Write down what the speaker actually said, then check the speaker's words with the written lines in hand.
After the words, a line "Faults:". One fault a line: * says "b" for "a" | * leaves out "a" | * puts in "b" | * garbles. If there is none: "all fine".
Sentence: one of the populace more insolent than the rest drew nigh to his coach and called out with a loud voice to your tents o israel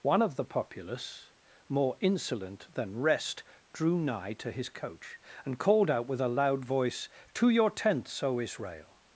one of the populace more insolent than rest drew nigh to his coach and called out with a loud voice to your tents o israel
Faults:
* leaves out "the"